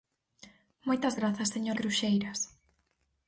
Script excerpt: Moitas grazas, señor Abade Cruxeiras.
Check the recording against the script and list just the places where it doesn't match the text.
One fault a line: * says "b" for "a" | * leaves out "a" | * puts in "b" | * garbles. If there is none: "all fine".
* leaves out "Abade"